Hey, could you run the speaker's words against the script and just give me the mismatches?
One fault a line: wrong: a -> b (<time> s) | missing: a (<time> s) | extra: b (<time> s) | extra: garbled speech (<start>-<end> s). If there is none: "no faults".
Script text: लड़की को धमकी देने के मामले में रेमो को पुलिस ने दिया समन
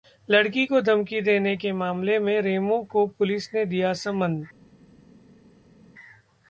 no faults